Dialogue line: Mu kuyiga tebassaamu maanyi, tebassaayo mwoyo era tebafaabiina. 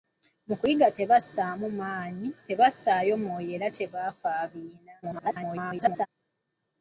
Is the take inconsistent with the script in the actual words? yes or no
yes